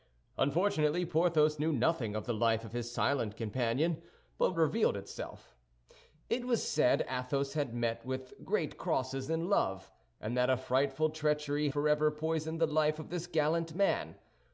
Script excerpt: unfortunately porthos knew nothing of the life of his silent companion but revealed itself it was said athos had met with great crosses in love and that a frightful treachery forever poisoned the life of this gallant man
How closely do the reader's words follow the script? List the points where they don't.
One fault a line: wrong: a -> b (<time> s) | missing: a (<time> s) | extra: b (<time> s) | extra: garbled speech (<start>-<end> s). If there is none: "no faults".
no faults